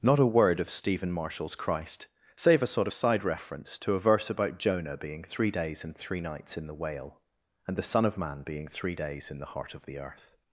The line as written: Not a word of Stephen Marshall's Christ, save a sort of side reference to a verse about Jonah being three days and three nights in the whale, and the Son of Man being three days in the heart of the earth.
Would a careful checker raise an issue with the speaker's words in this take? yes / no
no